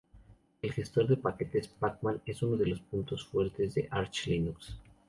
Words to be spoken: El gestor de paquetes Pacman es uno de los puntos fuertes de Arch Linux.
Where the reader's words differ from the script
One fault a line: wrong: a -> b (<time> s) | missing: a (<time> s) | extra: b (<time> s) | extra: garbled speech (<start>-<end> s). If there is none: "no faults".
no faults